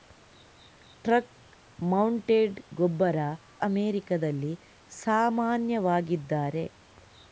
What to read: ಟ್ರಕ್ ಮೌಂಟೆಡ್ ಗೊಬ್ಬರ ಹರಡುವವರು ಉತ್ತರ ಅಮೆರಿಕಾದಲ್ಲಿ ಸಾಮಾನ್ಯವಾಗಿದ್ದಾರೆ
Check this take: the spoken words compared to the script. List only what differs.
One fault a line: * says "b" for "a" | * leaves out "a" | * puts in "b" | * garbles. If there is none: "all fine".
* leaves out "ಹರಡುವವರು ಉತ್ತರ"